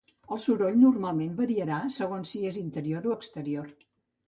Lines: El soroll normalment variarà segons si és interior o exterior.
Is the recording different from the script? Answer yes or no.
no